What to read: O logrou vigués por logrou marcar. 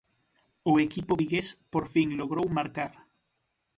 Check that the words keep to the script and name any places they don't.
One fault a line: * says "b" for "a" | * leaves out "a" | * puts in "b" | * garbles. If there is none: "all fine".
* says "equipo" for "logrou"
* puts in "fin"